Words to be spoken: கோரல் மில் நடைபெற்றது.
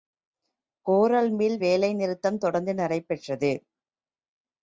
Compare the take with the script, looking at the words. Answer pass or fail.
fail